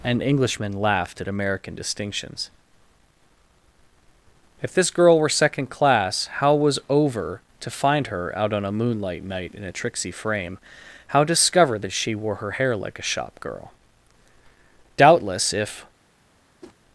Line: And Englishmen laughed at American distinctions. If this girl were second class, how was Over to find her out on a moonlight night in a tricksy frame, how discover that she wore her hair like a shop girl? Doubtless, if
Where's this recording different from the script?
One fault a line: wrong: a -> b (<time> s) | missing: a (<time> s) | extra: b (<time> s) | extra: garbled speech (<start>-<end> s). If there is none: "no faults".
no faults